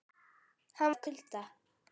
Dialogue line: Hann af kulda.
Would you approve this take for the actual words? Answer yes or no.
yes